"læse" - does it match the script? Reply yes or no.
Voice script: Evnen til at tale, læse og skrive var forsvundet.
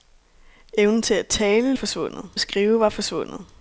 no